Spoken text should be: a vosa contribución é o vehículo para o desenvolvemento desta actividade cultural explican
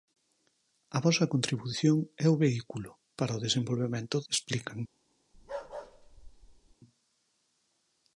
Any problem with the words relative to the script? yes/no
yes